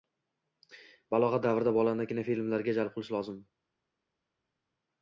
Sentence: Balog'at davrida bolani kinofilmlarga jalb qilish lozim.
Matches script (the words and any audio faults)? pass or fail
pass